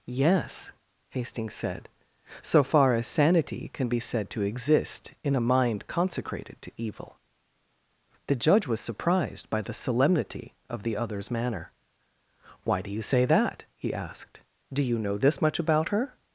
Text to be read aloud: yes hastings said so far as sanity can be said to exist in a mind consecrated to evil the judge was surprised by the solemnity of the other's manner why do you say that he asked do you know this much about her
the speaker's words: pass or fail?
pass